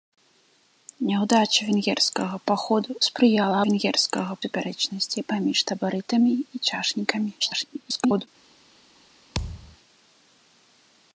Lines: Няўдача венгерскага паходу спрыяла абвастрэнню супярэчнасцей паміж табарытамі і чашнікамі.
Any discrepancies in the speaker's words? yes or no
yes